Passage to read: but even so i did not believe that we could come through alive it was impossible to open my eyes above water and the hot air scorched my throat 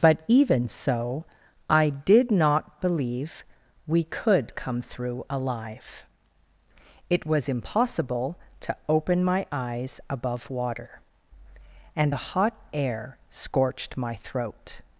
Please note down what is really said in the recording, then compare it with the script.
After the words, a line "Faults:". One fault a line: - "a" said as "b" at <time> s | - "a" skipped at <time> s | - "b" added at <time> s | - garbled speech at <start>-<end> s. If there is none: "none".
but even so i did not believe we could come through alive it was impossible to open my eyes above water and the hot air scorched my throat
Faults:
- "that" skipped at 3.5 s